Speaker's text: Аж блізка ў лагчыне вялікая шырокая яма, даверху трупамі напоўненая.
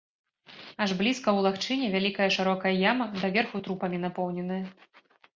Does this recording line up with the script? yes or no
yes